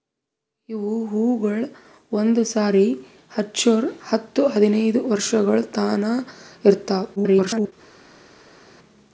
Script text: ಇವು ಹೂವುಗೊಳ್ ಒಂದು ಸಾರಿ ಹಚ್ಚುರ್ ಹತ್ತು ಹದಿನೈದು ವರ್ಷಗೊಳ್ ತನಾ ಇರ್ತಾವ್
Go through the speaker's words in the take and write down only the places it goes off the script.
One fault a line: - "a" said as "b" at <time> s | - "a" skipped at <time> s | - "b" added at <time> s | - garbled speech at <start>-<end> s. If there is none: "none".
- garbled speech at 7.2-7.7 s